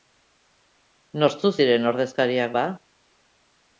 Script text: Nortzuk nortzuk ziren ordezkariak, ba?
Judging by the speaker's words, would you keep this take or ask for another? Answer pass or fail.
fail